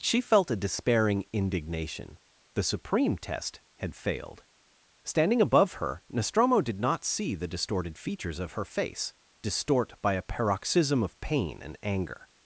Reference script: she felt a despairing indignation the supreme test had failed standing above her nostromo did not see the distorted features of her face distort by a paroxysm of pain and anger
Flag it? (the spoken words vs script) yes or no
no